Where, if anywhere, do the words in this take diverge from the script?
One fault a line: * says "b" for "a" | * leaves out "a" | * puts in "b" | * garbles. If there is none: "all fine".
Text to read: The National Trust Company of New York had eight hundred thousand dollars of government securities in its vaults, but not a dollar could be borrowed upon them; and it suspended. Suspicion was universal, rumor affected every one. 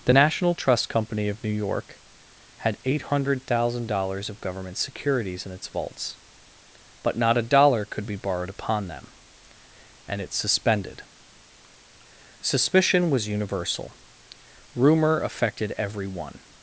all fine